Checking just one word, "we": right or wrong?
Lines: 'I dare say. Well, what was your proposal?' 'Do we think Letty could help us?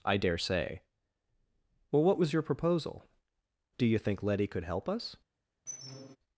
wrong